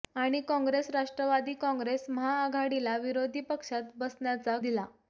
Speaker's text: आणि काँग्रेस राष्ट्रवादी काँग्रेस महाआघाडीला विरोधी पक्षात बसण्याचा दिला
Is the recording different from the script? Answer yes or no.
no